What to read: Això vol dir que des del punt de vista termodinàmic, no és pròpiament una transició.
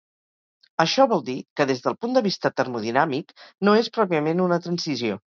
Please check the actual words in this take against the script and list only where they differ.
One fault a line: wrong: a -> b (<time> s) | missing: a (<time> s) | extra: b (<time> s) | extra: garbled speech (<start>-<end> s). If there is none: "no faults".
no faults